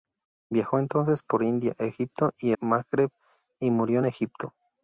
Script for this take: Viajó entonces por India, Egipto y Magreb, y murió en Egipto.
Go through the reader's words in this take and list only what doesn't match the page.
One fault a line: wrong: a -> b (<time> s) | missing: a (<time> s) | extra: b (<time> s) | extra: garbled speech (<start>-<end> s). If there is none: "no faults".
no faults